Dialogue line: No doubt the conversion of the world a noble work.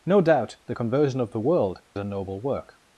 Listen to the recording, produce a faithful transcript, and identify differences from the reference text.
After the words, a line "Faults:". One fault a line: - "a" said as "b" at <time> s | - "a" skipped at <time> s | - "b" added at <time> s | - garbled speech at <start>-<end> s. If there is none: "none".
No doubt the conversion of the world a noble work.
Faults:
none